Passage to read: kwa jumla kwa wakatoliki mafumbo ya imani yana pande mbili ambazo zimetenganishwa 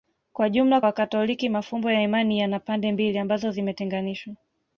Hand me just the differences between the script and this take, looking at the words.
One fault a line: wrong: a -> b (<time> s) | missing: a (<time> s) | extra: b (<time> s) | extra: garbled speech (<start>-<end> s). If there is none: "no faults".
missing: kwa (0.8 s)